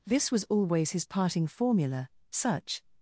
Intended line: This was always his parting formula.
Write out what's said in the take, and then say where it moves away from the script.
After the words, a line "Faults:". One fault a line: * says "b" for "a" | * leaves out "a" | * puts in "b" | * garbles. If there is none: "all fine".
This was always his parting formula. Such
Faults:
* puts in "Such"